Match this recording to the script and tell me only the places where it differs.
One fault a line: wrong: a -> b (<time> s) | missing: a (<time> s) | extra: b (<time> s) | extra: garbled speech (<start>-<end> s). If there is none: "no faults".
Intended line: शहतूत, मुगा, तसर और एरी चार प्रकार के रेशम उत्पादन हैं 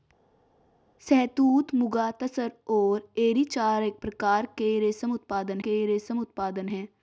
extra: के रेशम उत्पादन (5.6 s)